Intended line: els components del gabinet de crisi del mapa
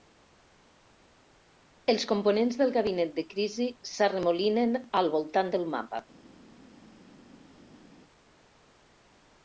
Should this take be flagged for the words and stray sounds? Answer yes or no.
yes